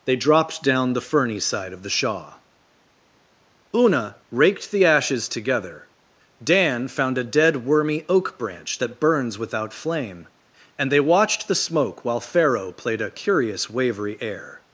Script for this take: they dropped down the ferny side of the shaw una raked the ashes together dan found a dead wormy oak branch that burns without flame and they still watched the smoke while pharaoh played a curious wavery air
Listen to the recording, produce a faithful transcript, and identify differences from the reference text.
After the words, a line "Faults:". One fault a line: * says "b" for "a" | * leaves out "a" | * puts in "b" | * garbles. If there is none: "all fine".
they dropped down the ferny side of the shaw una raked the ashes together dan found a dead wormy oak branch that burns without flame and they watched the smoke while pharaoh played a curious wavery air
Faults:
* leaves out "still"